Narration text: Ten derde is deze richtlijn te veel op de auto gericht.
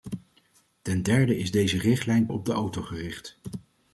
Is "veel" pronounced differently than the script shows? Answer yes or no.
yes